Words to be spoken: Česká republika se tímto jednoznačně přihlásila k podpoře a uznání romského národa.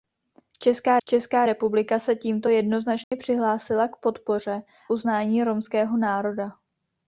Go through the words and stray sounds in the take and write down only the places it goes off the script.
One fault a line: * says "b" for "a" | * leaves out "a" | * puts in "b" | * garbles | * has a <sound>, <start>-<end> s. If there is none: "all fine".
* puts in "česká"
* has a dropout, 3.0-3.1 s
* leaves out "a"